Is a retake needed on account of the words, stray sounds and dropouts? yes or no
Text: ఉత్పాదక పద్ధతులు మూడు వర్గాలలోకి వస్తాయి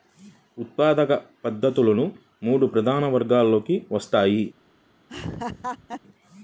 yes